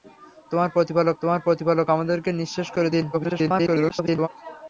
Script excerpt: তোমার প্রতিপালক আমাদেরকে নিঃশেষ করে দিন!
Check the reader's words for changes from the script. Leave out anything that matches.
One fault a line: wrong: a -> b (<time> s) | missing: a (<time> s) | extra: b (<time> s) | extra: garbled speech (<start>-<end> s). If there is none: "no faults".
extra: তোমার প্রতিপালক (1.2 s)
extra: garbled speech (3.1-4.3 s)